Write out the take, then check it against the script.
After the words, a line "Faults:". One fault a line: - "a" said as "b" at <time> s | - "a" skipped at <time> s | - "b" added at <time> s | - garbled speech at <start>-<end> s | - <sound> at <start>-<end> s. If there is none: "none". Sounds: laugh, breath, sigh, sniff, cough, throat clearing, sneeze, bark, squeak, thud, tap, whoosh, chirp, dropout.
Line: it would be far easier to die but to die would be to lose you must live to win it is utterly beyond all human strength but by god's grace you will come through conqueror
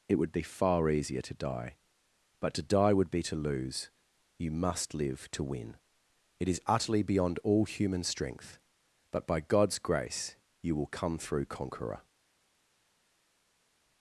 it would be far easier to die but to die would be to lose you must live to win it is utterly beyond all human strength but by god's grace you will come through conqueror
Faults:
none